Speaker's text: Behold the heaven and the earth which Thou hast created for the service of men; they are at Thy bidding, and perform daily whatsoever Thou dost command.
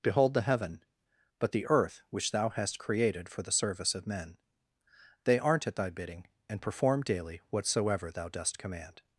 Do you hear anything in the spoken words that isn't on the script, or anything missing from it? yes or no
yes